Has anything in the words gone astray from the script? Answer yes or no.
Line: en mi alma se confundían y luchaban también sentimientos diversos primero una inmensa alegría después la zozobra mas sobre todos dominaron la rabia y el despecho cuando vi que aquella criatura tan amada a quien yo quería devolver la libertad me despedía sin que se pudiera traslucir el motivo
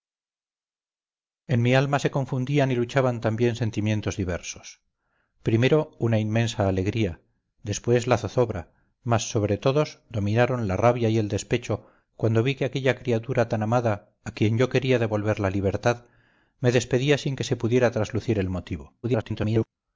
yes